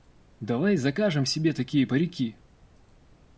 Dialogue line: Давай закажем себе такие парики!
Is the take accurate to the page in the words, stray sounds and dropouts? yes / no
yes